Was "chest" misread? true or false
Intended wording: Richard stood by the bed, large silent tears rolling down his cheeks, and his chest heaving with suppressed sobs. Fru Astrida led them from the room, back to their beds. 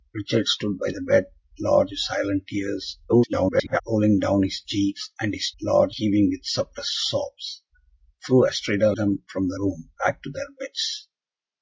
true